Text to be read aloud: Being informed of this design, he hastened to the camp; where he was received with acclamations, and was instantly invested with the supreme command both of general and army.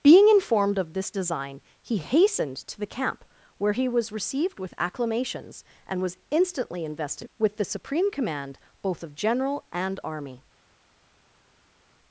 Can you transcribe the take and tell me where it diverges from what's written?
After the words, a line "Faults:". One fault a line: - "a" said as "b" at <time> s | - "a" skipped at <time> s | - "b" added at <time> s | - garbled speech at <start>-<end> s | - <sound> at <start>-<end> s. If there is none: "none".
Being informed of this design, he hastened to the camp; where he was received with acclamations, and was instantly invested with the supreme command both of general and army.
Faults:
none